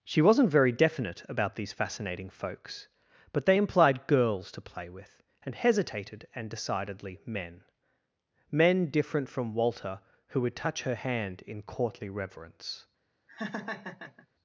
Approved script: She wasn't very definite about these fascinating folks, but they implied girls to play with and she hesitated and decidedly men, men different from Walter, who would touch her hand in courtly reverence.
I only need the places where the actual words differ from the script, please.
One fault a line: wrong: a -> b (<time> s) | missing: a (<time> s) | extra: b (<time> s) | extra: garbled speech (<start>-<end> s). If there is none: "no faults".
missing: she (5.6 s)